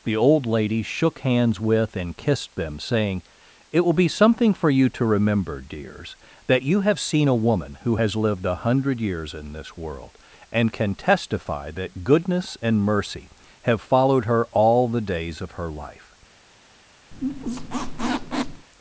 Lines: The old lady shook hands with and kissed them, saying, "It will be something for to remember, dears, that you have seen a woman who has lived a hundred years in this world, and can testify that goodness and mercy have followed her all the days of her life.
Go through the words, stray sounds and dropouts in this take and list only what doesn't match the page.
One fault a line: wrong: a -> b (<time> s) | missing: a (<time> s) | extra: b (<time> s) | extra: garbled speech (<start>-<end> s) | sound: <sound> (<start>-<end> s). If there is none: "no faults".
extra: you (4.7 s)
sound: squeak (17.1-18.7 s)